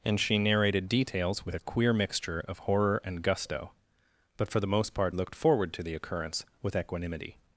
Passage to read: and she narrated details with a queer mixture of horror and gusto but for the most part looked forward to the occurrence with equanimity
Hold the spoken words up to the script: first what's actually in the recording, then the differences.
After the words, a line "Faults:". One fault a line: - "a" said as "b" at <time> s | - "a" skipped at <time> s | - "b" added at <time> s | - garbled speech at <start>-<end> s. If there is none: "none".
and she narrated details with a queer mixture of horror and gusto but for the most part looked forward to the occurrence with equanimity
Faults:
none